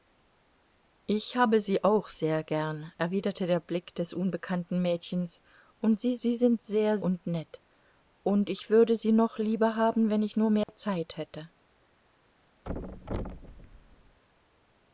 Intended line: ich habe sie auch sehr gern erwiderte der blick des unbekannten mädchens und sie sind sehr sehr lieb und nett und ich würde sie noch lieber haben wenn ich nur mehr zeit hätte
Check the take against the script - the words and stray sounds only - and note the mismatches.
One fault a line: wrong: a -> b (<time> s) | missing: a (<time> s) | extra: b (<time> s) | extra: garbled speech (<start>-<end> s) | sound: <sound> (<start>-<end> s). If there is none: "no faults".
extra: sie (6.2 s)
missing: sehr lieb (7.0 s)
sound: dropout (10.6-10.7 s)
sound: thud (12.6-14.2 s)